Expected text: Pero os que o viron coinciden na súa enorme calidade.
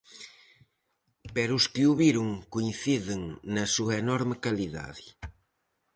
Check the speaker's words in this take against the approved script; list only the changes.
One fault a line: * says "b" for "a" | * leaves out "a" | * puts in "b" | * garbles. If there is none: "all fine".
all fine